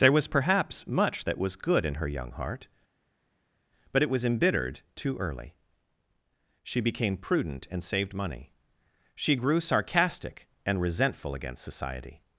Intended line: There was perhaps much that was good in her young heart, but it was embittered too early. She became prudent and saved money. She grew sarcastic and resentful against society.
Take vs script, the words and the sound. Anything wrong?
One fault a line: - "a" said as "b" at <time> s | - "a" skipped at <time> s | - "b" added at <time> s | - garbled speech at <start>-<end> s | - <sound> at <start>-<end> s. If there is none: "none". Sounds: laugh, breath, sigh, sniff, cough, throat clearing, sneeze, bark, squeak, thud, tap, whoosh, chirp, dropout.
none